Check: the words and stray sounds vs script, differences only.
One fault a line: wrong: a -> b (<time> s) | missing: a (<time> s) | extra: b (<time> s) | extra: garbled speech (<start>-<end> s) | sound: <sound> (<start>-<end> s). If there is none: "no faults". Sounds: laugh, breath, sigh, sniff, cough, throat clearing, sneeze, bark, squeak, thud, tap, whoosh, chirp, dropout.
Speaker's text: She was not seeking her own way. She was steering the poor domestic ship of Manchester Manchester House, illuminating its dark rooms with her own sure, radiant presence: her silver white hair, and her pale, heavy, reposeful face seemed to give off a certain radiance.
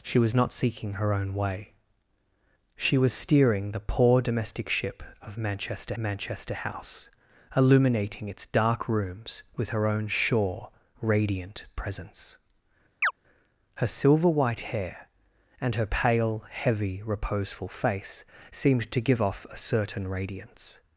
sound: chirp (13.0-13.1 s)